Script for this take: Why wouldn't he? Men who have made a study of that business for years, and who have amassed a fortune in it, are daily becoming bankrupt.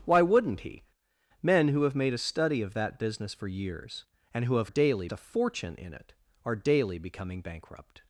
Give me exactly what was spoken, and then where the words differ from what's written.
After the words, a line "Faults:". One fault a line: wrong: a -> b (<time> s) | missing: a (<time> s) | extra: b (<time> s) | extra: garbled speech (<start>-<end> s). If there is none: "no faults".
Why wouldn't he? Men who have made a study of that business for years, and who have daily a fortune in it, are daily becoming bankrupt.
Faults:
wrong: amassed -> daily (4.6 s)